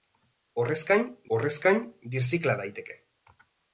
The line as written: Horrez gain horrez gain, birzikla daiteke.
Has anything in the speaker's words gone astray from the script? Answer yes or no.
no